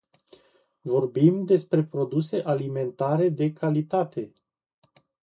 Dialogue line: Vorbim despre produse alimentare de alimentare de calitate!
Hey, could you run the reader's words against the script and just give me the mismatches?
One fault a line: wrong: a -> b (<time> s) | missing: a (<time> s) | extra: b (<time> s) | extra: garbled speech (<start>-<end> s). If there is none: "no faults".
missing: alimentare de (3.5 s)